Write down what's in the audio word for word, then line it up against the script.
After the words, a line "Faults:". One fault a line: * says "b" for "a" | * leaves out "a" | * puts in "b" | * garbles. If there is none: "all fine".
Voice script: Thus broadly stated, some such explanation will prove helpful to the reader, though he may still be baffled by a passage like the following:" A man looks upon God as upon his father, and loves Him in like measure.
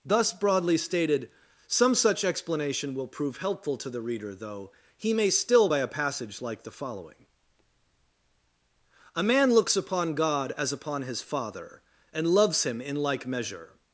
Thus broadly stated, some such explanation will prove helpful to the reader, though he may still by a passage like the following:" A man looks upon God as upon his father, and loves Him in like measure.
Faults:
* leaves out "be baffled"